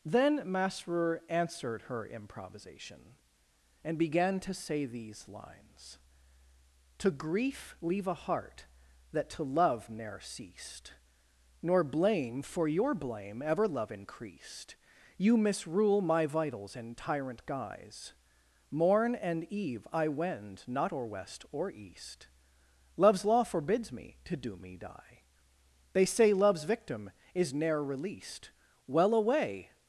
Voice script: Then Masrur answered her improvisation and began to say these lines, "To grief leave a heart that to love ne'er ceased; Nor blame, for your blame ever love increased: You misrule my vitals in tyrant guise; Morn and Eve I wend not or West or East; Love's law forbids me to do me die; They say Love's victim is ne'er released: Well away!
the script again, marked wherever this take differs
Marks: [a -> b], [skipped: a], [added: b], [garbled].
Then Masrur answered her improvisation and began to say these lines, "To grief leave a heart that to love ne'er ceased; Nor blame, for your blame ever love increased: You misrule my vitals in tyrant guise; Morn and Eve I wend not or West or East; Love's law forbids me to do me die; They say Love's victim is ne'er released: Well away!